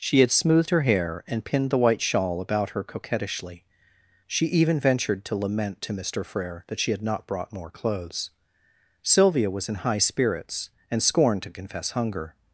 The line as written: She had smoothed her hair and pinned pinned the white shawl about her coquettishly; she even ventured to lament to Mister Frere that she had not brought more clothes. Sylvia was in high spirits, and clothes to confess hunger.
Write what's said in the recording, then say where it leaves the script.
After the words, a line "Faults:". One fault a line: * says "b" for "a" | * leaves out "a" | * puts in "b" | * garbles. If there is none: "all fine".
She had smoothed her hair and pinned the white shawl about her coquettishly; she even ventured to lament to Mister Frere that she had not brought more clothes. Sylvia was in high spirits, and scorned to confess hunger.
Faults:
* leaves out "pinned"
* says "scorned" for "clothes"